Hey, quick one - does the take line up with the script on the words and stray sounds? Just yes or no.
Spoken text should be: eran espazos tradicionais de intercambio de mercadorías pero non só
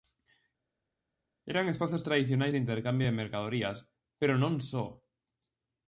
yes